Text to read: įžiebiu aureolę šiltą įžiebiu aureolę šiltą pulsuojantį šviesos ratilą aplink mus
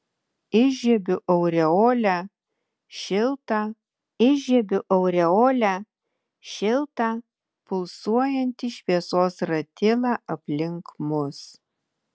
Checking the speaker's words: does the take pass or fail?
pass